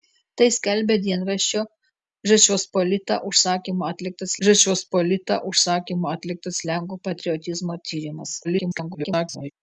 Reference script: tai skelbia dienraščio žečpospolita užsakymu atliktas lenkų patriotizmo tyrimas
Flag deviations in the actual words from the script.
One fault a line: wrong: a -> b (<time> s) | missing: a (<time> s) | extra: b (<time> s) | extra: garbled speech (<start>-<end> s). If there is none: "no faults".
extra: žečpospolita užsakymu atliktas (4.5 s)
extra: garbled speech (8.4-9.5 s)